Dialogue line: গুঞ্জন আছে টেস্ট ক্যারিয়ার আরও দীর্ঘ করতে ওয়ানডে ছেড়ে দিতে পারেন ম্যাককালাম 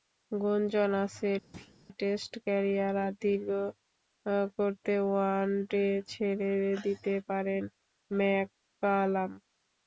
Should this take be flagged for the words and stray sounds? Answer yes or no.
yes